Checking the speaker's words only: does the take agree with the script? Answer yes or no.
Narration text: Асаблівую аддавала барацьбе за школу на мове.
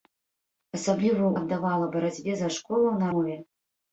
yes